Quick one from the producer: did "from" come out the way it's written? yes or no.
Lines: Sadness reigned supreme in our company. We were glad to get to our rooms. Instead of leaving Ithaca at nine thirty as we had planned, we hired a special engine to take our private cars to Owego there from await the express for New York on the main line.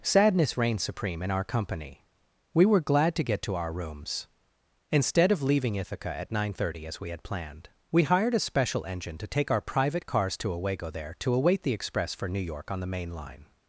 no